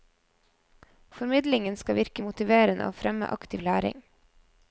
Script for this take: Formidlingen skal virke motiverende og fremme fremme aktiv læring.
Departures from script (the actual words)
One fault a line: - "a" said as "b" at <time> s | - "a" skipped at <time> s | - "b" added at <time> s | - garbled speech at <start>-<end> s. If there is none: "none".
- "fremme" skipped at 3.3 s